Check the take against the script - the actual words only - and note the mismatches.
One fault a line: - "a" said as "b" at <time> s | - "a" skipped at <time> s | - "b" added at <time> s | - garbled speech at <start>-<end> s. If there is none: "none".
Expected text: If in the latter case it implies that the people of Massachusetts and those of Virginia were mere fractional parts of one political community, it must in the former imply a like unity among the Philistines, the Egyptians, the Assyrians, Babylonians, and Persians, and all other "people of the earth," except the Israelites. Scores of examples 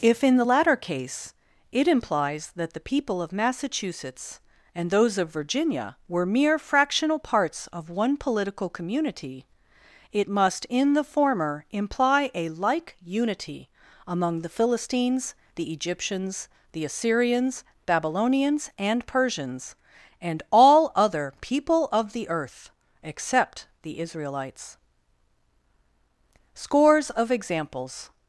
none